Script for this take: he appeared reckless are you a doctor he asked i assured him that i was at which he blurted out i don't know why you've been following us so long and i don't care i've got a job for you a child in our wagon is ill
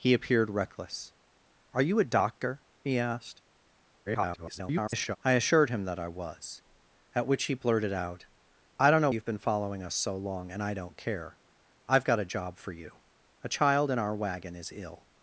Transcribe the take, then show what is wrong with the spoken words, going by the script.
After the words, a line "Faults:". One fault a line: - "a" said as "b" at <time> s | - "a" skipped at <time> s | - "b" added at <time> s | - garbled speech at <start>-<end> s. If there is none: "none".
he appeared reckless are you a doctor he asked [garbled] i assured him that i was at which he blurted out i don't know you've been following us so long and i don't care i've got a job for you a child in our wagon is ill
Faults:
- garbled speech at 4.1-5.2 s
- "why" skipped at 9.1 s